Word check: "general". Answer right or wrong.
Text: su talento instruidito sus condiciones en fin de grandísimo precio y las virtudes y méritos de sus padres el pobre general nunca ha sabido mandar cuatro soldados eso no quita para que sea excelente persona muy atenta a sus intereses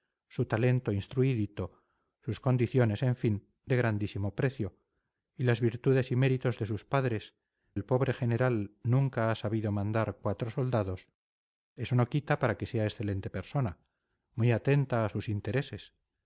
right